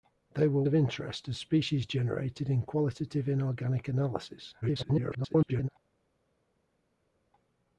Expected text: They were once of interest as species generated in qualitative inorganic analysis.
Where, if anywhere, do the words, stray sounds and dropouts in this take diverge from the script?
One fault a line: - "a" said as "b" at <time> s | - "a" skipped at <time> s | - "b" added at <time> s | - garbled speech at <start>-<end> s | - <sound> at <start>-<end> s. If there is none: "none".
- "once" skipped at 0.6 s
- garbled speech at 4.6-5.7 s